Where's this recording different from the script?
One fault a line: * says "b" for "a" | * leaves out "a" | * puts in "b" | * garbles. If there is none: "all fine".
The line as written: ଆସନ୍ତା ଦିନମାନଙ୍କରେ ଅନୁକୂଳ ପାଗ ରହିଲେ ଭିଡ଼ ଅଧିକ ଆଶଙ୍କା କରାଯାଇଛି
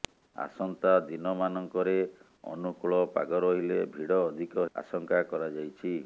all fine